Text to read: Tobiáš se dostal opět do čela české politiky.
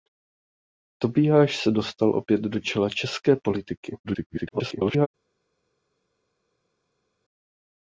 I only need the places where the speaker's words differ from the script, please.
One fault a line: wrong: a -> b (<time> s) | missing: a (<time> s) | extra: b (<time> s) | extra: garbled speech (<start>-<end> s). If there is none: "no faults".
extra: garbled speech (4.0-5.1 s)